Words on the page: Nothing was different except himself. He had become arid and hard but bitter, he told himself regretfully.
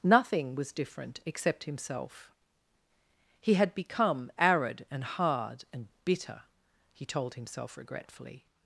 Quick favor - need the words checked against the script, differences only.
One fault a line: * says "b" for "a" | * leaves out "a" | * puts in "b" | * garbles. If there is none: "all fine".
* says "and" for "but"